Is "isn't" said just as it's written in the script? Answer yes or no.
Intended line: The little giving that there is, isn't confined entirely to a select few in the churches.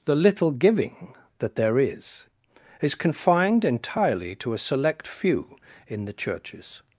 no